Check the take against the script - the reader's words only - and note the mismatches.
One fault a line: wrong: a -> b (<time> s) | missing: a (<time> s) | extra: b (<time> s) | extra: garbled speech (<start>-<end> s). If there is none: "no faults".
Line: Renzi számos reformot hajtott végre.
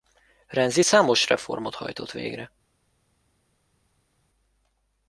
no faults